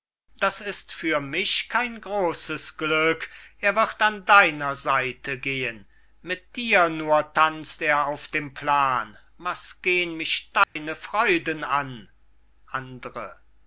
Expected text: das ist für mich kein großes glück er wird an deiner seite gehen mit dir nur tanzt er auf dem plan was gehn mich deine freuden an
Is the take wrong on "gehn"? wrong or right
right